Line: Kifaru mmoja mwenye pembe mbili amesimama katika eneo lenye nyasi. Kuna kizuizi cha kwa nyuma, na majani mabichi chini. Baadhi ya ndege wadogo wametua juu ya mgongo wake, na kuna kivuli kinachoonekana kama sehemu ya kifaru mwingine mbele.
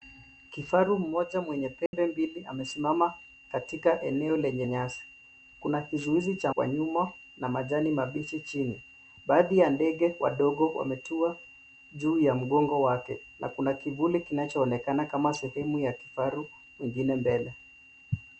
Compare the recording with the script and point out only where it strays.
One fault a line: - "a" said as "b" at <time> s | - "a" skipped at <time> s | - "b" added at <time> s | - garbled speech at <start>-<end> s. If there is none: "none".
none